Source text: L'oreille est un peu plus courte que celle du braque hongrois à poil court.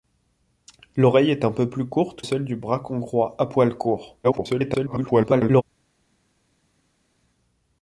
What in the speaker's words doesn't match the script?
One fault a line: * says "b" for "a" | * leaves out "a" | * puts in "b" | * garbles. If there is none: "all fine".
* leaves out "que"
* garbles